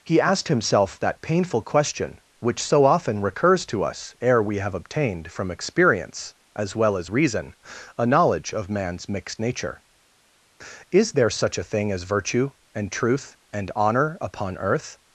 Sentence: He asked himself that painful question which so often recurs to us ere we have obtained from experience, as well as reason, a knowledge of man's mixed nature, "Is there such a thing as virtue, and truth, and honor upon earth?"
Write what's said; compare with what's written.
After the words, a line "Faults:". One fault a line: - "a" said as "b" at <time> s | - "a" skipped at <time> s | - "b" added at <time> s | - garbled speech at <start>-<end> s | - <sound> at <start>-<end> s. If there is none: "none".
He asked himself that painful question which so often recurs to us ere we have obtained from experience, as well as reason, a knowledge of man's mixed nature, "Is there such a thing as virtue, and truth, and honor upon earth?"
Faults:
none